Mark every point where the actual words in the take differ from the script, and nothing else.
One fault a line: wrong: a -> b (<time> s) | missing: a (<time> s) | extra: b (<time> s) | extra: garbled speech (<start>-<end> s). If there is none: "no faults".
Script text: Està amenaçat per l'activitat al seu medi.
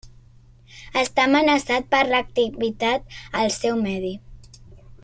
no faults